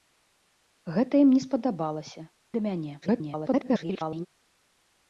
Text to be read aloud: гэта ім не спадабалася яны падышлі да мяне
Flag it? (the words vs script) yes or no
yes